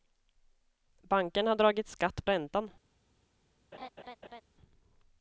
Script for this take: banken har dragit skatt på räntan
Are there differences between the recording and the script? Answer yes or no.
yes